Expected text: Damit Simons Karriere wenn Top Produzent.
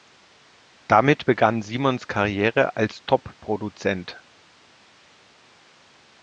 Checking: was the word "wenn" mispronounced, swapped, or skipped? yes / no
yes